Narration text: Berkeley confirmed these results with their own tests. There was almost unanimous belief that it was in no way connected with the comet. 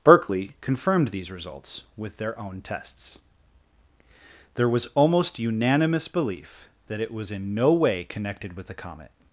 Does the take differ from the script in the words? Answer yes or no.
no